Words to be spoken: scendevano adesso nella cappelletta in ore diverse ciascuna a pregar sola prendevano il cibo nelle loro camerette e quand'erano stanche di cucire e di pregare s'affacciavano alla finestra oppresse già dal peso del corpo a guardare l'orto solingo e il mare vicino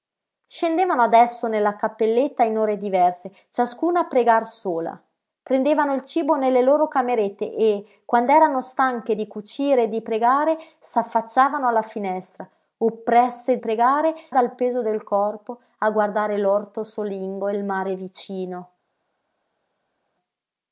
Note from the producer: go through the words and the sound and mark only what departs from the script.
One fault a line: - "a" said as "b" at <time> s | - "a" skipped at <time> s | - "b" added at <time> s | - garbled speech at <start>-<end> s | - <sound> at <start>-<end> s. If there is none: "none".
- "già" said as "pregare" at 13.6 s